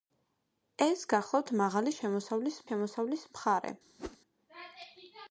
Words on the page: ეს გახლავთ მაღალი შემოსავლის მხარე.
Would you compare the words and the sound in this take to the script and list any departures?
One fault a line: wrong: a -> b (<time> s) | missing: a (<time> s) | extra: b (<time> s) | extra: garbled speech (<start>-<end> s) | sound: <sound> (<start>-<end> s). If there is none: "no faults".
extra: შემოსავლის (2.7 s)
sound: whoosh (4.0-4.2 s)